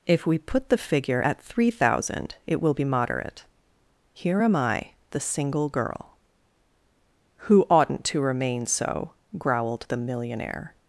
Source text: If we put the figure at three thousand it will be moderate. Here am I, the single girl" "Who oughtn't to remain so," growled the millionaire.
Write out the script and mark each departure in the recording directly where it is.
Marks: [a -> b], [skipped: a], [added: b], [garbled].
If we put the figure at three thousand it will be moderate. Here am I, the single girl" "Who oughtn't to remain so," growled the millionaire.